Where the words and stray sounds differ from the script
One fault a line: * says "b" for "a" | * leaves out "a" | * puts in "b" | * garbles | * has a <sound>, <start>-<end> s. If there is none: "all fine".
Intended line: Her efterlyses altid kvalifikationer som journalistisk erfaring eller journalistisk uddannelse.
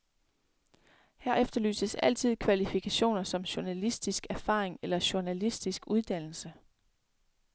all fine